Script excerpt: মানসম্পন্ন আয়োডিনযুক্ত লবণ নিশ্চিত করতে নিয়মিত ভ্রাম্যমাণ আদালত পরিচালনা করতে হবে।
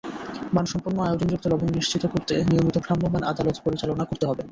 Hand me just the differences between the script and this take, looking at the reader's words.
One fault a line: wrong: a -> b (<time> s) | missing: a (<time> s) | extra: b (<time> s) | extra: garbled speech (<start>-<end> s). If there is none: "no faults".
no faults